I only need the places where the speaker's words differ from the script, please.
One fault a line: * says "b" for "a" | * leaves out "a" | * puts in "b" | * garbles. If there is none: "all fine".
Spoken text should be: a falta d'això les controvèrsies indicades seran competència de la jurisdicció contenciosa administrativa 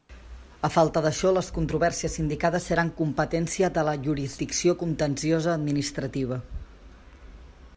all fine